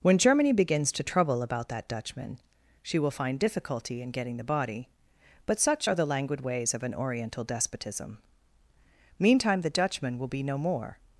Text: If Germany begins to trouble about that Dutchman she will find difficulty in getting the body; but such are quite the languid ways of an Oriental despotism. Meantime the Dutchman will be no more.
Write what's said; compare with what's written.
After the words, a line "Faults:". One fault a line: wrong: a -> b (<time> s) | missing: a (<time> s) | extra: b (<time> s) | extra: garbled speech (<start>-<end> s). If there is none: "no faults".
When Germany begins to trouble about that Dutchman she will find difficulty in getting the body; but such are the languid ways of an Oriental despotism. Meantime the Dutchman will be no more.
Faults:
wrong: If -> When (0.0 s)
missing: quite (6.0 s)